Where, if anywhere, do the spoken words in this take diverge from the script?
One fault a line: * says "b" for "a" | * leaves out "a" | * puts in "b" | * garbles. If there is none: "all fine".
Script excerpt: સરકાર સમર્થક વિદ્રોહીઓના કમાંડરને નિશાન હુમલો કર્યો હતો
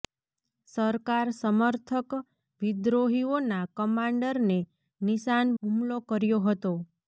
all fine